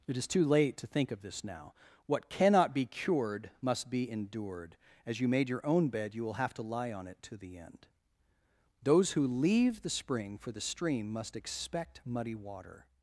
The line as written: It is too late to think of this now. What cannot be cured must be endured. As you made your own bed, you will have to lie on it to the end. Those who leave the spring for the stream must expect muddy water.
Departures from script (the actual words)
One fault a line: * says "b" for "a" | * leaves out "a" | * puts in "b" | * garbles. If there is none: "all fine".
all fine